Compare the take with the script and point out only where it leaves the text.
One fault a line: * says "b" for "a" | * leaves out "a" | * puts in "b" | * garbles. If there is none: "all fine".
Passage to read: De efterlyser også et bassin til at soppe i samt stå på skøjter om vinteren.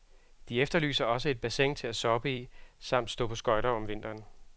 all fine